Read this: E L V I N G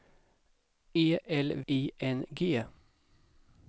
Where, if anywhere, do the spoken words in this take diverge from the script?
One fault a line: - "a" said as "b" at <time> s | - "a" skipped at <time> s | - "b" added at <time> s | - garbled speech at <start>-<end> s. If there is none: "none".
- "V" skipped at 1.6 s